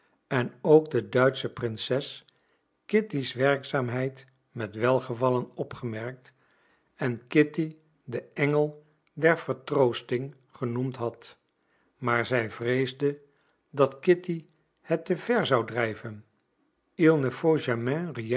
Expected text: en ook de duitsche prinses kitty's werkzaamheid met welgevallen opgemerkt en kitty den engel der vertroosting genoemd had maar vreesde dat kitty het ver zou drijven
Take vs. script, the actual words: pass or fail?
fail